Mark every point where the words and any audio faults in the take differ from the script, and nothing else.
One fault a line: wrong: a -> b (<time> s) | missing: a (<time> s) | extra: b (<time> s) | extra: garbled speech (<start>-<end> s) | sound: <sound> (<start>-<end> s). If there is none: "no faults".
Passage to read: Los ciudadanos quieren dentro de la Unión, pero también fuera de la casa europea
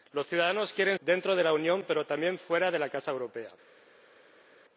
no faults